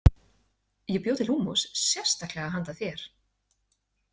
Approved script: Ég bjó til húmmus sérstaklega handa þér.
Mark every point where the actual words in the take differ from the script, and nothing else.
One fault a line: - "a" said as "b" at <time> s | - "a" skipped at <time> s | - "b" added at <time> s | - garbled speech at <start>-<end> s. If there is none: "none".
none